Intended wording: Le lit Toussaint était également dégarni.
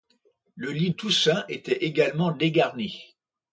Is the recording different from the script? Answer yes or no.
no